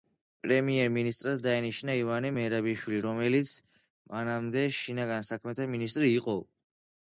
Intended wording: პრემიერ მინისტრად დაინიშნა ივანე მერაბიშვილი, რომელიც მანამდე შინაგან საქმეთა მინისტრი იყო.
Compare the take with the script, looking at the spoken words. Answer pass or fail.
pass